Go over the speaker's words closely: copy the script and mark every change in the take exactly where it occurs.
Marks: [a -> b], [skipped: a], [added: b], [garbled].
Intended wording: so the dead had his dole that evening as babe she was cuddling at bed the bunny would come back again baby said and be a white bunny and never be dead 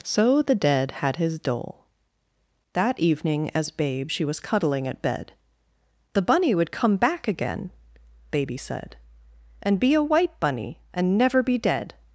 so the dead had his dole that evening as babe she was cuddling at bed the bunny would come back again baby said and be a white bunny and never be dead